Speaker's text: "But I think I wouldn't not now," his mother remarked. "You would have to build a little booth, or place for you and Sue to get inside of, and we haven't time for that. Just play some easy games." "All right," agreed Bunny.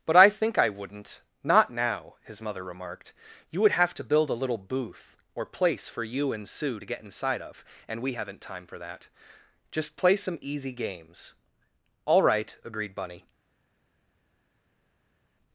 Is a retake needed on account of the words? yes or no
no